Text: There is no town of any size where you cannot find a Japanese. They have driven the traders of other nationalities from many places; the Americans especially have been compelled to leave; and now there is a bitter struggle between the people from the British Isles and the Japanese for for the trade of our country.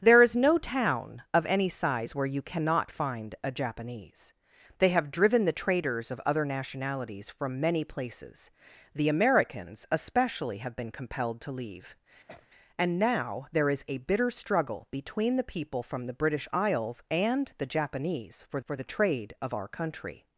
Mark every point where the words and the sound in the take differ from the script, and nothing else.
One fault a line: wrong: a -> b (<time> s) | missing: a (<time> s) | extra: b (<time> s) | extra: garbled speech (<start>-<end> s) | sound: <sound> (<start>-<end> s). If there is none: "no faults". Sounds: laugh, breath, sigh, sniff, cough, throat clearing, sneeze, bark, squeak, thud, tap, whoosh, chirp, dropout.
sound: sneeze (12.3-12.5 s)